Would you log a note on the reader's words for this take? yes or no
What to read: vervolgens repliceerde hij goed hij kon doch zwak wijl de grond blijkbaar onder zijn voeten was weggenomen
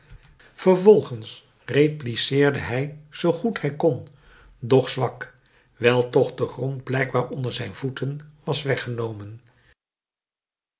yes